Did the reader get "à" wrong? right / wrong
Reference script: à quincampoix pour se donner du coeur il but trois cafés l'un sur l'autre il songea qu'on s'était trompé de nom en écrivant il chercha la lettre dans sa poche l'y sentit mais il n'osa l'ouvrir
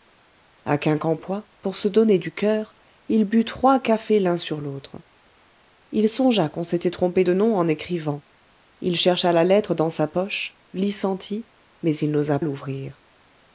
right